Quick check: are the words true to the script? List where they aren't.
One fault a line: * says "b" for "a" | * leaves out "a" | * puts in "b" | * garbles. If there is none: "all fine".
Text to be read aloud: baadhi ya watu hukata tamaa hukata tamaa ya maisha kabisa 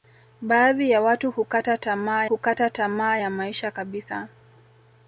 all fine